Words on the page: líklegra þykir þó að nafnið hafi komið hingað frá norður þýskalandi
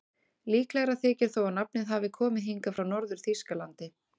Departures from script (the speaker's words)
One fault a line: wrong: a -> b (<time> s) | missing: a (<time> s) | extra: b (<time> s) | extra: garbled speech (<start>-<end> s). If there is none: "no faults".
no faults